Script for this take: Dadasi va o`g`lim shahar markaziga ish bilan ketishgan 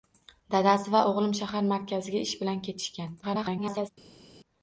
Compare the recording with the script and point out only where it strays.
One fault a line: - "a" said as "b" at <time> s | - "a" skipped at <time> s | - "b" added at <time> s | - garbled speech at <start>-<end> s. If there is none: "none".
- garbled speech at 3.2-3.9 s